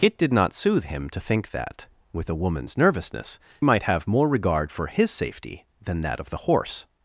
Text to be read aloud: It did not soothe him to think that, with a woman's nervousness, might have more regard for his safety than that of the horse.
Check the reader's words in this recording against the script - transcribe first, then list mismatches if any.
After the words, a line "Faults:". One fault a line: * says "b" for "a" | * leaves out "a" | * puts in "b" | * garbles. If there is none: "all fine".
It did not soothe him to think that, with a woman's nervousness, might have more regard for his safety than that of the horse.
Faults:
all fine